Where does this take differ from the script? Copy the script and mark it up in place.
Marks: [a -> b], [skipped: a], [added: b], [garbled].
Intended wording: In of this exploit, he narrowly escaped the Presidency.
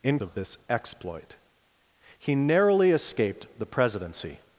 In of this exploit, he narrowly escaped the Presidency.